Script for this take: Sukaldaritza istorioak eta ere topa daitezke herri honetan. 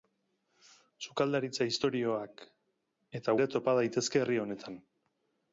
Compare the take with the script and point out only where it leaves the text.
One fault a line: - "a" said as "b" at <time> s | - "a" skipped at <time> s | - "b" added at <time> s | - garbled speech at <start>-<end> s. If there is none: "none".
none